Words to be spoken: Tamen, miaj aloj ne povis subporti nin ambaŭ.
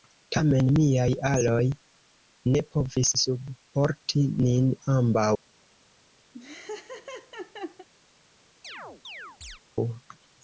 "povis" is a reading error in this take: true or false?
false